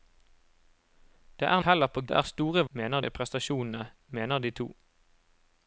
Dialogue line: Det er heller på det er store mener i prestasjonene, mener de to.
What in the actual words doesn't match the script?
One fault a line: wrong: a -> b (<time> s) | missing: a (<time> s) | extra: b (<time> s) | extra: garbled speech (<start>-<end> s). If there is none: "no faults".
no faults